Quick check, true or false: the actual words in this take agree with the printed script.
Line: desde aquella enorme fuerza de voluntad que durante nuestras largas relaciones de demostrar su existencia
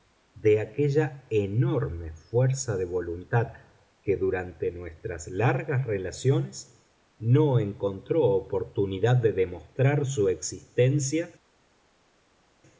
false